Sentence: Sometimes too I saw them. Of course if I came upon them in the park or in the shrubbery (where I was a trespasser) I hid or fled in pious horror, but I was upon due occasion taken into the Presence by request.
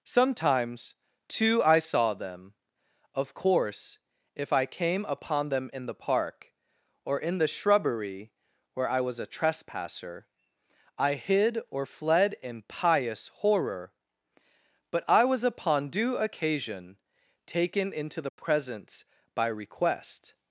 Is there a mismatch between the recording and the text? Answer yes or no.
no